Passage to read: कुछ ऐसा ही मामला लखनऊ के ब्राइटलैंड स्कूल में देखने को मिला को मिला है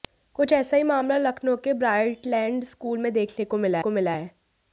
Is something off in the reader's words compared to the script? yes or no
no